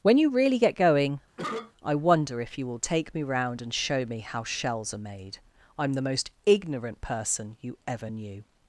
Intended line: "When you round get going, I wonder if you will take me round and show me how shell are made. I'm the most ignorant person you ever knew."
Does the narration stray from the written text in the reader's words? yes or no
yes